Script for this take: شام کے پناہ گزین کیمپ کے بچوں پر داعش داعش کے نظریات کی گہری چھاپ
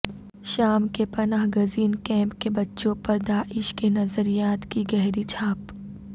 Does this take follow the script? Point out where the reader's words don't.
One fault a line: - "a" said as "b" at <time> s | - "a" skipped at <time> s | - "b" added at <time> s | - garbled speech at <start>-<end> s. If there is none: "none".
- "داعش" skipped at 3.7 s